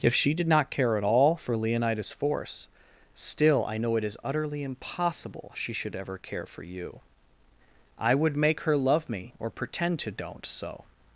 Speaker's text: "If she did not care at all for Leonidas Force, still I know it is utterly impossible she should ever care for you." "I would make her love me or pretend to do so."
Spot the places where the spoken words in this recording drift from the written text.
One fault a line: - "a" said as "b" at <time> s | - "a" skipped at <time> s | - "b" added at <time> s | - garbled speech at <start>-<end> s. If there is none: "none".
- "do" said as "don't" at 10.1 s